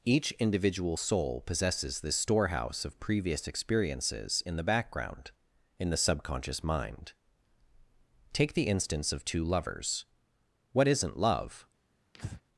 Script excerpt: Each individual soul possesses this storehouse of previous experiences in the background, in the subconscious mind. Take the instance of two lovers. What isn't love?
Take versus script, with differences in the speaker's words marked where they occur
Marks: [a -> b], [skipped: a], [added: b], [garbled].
Each individual soul possesses this storehouse of previous experiences in the background, in the subconscious mind. Take the instance of two lovers. What isn't love?